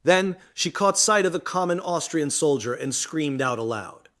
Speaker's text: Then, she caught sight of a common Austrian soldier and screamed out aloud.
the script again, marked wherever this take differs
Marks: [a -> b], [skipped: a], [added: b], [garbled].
Then, she caught sight of [a -> the] common Austrian soldier and screamed out aloud.